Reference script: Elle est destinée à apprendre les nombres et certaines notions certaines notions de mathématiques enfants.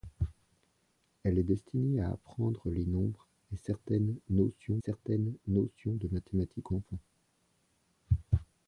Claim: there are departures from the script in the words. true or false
false